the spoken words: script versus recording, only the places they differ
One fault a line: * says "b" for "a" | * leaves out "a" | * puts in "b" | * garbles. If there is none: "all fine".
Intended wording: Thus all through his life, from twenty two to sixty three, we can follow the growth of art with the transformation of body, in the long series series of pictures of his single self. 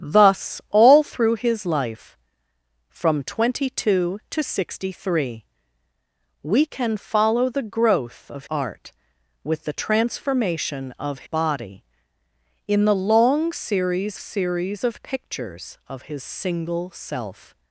all fine